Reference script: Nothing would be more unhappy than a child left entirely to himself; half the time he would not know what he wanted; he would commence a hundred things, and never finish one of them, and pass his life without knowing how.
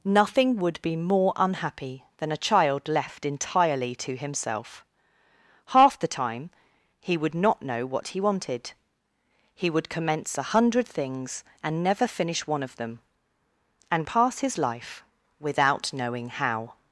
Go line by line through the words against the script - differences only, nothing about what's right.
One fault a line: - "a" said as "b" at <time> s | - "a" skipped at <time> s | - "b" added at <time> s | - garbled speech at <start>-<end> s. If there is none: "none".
none